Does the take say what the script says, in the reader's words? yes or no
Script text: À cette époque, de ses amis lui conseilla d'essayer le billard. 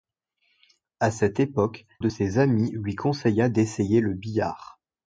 yes